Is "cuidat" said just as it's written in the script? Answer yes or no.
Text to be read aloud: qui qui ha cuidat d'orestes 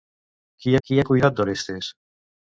yes